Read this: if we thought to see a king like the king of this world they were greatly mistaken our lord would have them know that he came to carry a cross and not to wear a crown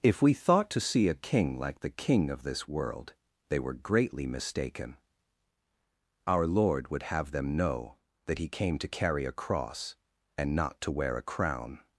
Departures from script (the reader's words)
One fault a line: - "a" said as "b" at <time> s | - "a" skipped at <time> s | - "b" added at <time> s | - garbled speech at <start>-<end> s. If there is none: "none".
none